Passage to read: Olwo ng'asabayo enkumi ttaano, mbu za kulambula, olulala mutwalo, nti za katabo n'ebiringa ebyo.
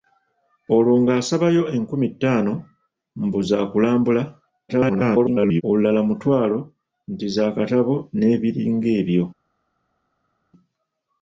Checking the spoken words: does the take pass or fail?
fail